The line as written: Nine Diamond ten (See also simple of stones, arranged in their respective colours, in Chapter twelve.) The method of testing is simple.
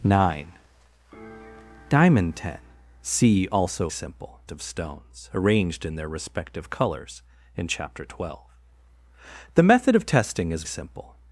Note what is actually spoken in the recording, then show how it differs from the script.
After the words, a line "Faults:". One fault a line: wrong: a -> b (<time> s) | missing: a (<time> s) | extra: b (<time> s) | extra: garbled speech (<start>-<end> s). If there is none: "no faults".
Nine Diamond ten (See also simple of stones, arranged in their respective colours, in Chapter twelve.) The method of testing is simple.
Faults:
no faults